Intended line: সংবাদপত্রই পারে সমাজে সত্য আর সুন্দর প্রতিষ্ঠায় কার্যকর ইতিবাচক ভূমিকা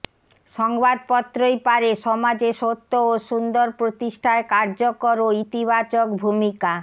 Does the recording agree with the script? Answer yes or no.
no